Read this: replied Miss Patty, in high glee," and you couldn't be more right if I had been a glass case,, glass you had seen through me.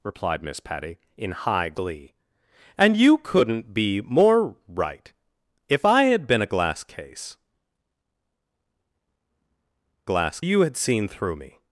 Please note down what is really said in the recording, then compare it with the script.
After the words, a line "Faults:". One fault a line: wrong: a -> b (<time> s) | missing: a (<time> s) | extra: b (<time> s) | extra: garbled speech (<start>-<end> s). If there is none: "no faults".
replied Miss Patty, in high glee," and you couldn't be more right if I had been a glass case,, glass you had seen through me.
Faults:
no faults